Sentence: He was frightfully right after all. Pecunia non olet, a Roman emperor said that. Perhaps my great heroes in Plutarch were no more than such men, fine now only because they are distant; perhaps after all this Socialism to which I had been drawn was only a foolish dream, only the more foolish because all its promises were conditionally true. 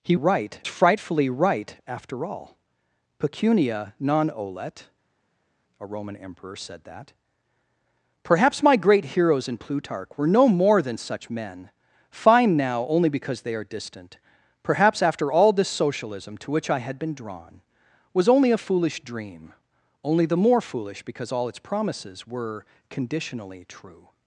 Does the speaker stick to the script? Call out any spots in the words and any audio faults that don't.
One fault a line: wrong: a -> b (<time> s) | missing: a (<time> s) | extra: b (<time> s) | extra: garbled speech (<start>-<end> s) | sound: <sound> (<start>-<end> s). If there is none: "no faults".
wrong: was -> right (0.1 s)